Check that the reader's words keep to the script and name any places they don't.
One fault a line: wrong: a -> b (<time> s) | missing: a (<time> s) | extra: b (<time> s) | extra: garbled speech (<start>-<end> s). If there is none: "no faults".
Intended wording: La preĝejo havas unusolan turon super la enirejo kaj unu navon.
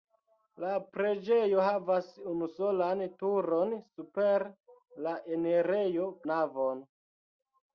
missing: kaj unu (6.1 s)